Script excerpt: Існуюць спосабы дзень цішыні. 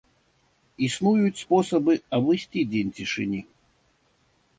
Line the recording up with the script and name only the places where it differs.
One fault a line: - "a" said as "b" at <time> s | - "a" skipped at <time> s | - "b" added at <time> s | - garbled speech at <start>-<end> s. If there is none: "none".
- "абысці" added at 2.2 s